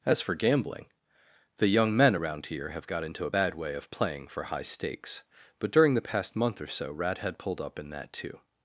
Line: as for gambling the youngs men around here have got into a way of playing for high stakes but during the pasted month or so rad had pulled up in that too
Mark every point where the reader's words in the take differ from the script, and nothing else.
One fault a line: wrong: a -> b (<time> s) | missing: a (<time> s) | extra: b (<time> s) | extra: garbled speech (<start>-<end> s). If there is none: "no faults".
wrong: youngs -> young (1.7 s)
extra: bad (3.3 s)
wrong: pasted -> past (6.0 s)